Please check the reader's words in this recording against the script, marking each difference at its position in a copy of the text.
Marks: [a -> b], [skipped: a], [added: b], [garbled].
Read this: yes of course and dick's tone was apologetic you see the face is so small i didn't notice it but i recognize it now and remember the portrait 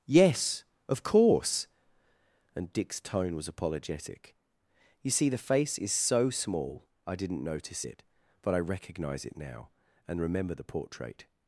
yes of course and dick's tone was apologetic you see the face is so small i didn't notice it but i recognize it now and remember the portrait